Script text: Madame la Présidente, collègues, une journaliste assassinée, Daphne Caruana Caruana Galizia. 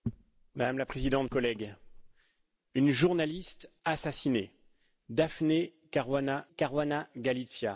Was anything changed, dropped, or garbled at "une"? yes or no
no